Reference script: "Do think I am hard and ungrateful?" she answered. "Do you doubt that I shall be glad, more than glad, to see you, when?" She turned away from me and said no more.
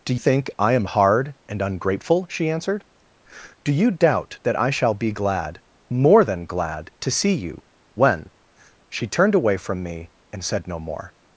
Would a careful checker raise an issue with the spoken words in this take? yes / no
no